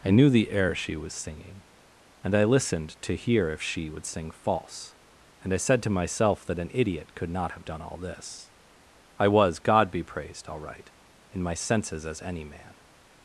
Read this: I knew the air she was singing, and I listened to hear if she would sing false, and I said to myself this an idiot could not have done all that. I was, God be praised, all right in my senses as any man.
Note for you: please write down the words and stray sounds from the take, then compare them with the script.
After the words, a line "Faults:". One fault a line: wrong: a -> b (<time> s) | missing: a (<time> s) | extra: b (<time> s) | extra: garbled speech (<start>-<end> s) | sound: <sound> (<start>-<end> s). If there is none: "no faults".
I knew the air she was singing, and I listened to hear if she would sing false, and I said to myself that an idiot could not have done all this. I was, God be praised, all right in my senses as any man.
Faults:
wrong: this -> that (6.5 s)
wrong: that -> this (8.0 s)